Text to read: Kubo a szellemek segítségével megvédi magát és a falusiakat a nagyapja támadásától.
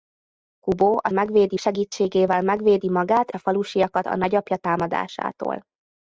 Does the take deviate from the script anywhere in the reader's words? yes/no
yes